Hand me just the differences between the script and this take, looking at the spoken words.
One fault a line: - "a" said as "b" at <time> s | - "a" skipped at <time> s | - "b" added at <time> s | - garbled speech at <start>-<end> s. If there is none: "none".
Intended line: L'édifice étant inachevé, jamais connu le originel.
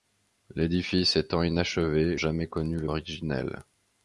none